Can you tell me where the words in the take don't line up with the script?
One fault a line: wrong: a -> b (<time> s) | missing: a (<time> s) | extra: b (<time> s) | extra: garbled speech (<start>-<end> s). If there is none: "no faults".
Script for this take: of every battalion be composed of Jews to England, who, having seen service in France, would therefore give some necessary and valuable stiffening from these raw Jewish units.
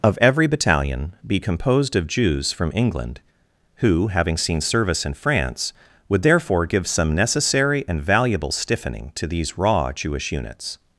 wrong: to -> from (2.5 s)
wrong: from -> to (9.1 s)